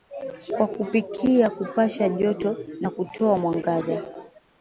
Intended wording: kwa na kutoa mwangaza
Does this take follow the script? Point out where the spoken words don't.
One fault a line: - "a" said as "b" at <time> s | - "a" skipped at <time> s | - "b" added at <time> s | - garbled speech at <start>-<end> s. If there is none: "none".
- "kupikia kupasha joto" added at 0.7 s